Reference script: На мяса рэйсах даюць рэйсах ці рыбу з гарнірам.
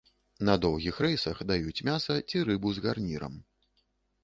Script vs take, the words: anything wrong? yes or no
yes